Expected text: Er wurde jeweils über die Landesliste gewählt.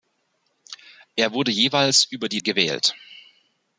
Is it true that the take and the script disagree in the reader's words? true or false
true